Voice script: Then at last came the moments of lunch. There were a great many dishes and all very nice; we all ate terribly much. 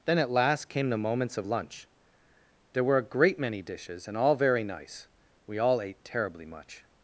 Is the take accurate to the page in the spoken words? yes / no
yes